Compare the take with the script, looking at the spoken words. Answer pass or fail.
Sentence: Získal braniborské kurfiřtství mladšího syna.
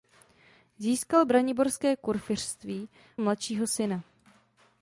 pass